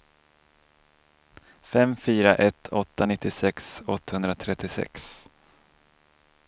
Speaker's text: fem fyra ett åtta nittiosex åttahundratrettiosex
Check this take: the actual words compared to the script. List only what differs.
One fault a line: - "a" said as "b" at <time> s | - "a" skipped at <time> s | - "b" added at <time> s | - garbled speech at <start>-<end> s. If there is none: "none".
none